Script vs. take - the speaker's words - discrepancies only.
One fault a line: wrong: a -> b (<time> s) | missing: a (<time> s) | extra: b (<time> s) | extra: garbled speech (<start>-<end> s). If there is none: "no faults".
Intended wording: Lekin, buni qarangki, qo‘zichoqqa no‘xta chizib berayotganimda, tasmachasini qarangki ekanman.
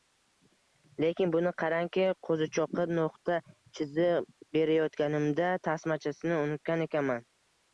wrong: qarangki -> unutgan (6.5 s)